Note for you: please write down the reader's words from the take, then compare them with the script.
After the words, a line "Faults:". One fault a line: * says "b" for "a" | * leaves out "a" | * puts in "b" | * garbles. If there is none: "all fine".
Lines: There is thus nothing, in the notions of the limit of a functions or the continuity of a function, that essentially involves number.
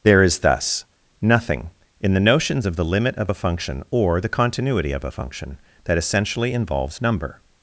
There is thus nothing, in the notions of the limit of a function or the continuity of a function, that essentially involves number.
Faults:
* says "function" for "functions"